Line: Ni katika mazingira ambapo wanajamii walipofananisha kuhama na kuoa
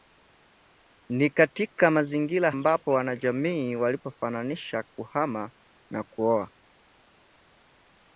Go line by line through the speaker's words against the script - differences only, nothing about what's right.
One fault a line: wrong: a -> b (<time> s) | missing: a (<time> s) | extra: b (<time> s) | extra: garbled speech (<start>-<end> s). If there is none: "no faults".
no faults